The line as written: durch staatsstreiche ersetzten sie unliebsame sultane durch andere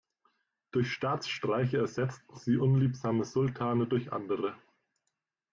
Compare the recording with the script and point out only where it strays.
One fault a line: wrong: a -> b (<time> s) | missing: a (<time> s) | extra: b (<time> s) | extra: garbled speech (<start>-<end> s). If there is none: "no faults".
no faults